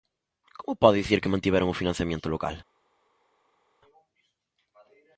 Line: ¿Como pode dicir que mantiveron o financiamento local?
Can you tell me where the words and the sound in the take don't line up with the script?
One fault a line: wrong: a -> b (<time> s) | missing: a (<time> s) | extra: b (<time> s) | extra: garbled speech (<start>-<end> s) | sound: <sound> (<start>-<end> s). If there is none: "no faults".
no faults